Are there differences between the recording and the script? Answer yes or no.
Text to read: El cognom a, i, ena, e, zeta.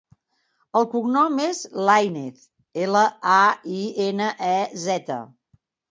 yes